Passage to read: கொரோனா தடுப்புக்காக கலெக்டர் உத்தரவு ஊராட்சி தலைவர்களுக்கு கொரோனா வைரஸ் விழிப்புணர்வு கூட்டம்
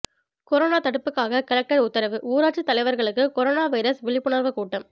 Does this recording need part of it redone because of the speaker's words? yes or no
no